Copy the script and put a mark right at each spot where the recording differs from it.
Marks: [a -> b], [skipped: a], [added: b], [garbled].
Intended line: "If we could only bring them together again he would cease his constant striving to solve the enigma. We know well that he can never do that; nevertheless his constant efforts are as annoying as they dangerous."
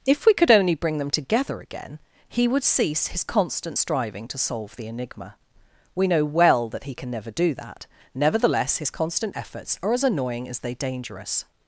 "If we could only bring them together again he would cease his constant striving to solve the enigma. We know well that he can never do that; nevertheless his constant efforts are as annoying as they dangerous."